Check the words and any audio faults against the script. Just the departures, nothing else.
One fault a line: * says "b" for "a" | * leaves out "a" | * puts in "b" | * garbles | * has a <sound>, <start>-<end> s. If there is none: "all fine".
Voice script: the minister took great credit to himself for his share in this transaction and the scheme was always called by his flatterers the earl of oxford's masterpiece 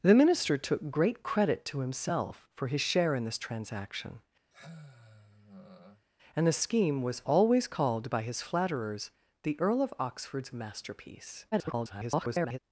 * has a sigh, 4.5-6.1 s
* garbles